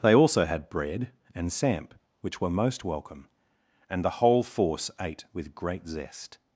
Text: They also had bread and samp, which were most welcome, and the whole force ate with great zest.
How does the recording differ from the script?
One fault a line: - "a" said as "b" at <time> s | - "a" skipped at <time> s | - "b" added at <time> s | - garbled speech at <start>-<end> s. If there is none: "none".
none